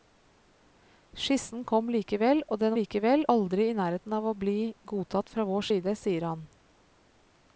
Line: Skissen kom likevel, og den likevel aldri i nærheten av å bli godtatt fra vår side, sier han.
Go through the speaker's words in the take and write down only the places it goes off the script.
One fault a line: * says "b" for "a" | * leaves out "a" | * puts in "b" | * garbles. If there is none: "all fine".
all fine